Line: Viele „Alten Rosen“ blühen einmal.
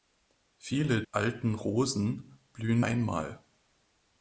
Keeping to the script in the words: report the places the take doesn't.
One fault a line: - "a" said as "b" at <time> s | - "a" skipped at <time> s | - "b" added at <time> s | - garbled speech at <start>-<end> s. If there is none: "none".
none